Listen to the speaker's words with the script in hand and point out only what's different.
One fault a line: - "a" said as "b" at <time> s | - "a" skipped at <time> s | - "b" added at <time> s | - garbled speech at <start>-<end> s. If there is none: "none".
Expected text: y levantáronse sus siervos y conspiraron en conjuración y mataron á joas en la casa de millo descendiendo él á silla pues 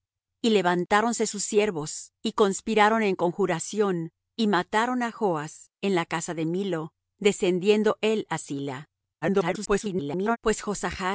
- garbled speech at 9.2-10.4 s